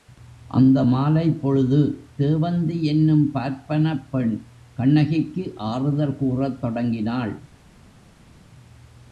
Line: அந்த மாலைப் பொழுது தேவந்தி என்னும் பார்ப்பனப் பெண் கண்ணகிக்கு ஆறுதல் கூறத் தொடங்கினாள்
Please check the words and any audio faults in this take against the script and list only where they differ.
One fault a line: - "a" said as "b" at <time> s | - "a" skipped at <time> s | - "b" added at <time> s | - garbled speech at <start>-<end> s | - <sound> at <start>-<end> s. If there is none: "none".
none